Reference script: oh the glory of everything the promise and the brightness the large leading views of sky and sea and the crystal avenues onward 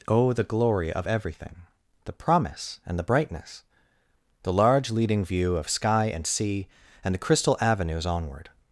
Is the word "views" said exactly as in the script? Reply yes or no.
no